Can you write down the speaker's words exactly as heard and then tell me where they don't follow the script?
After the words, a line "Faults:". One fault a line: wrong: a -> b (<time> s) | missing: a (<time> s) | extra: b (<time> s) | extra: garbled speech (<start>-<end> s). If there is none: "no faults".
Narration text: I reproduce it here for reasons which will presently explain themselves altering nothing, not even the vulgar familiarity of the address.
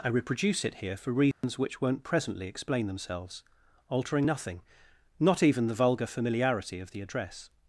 I reproduce it here for reasons which won't presently explain themselves altering nothing, not even the vulgar familiarity of the address.
Faults:
wrong: will -> won't (1.8 s)